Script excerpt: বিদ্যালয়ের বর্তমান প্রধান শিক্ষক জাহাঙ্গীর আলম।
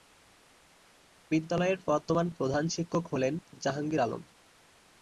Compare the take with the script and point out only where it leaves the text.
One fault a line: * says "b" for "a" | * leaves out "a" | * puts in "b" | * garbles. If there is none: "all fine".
* puts in "হলেন"